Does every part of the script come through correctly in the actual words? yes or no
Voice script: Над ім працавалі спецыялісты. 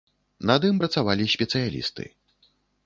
yes